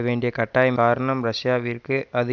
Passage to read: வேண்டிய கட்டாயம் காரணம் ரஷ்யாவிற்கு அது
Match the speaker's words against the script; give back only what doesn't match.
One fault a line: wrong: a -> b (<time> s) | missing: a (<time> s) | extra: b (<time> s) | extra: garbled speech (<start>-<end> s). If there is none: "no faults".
no faults